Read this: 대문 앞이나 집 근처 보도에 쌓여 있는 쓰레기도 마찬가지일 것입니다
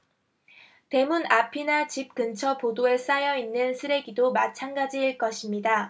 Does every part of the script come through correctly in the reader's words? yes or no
yes